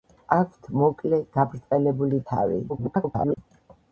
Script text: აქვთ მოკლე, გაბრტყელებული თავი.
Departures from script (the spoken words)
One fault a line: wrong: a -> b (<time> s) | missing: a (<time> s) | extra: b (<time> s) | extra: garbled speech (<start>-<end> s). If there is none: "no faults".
extra: garbled speech (2.7-3.4 s)